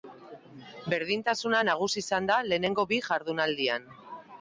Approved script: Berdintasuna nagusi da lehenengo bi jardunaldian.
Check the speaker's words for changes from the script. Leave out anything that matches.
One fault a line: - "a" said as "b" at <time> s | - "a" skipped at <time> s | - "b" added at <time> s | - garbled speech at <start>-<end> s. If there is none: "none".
- "izan" added at 2.1 s